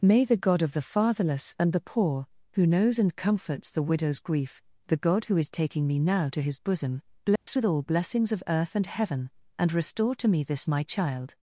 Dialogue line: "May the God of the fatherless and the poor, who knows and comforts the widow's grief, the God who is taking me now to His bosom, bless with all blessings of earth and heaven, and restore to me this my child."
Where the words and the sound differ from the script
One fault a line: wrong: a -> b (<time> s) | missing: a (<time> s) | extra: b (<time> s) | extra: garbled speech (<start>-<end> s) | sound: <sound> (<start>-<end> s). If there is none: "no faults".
sound: dropout (7.4-7.5 s)